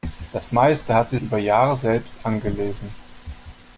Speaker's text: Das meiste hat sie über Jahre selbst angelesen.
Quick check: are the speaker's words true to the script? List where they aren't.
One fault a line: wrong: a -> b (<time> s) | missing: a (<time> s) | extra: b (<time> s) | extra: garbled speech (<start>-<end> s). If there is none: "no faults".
no faults